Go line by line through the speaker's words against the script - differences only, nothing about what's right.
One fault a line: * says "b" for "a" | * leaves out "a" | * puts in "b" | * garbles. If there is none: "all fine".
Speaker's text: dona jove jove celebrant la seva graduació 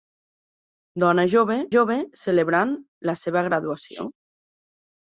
all fine